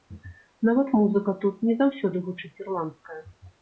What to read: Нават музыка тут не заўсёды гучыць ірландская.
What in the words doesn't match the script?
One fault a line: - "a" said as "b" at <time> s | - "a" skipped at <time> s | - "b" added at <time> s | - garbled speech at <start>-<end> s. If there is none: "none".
none